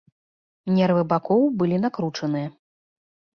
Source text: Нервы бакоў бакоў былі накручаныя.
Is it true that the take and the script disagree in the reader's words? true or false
true